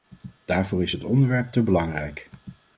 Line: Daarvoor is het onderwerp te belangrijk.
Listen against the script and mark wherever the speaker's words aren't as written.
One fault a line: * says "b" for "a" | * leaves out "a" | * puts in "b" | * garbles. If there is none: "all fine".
all fine